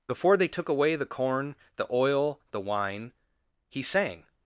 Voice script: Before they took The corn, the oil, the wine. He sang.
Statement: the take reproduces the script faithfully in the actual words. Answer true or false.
false